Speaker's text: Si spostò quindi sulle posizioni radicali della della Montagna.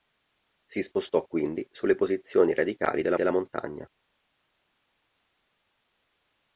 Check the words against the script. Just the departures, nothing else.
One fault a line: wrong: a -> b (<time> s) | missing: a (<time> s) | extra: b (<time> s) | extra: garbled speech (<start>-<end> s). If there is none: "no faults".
no faults